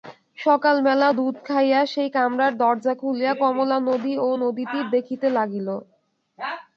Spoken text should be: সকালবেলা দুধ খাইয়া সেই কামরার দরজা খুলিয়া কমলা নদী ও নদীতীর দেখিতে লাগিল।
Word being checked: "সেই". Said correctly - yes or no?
yes